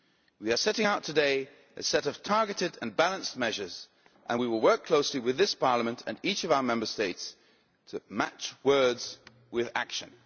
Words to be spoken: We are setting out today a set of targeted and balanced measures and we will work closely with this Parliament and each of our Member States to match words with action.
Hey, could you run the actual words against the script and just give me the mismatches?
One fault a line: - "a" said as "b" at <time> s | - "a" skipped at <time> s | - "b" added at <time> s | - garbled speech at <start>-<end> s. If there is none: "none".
none